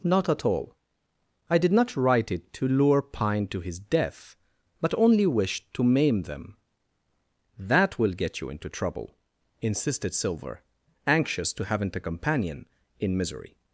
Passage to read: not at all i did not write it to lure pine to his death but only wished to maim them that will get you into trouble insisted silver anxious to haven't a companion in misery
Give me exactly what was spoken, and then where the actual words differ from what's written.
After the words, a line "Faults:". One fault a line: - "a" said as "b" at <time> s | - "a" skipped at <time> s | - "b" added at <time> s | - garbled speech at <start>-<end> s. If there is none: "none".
not at all i did not write it to lure pine to his death but only wished to maim them that will get you into trouble insisted silver anxious to haven't a companion in misery
Faults:
none